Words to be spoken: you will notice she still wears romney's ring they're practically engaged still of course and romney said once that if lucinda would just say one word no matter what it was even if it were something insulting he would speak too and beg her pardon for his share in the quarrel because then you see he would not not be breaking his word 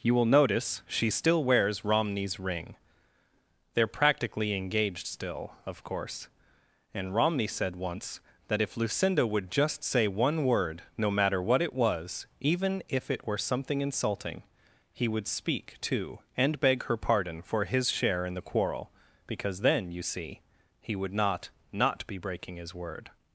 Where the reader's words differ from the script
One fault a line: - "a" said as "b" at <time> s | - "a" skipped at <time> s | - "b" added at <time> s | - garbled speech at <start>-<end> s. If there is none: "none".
none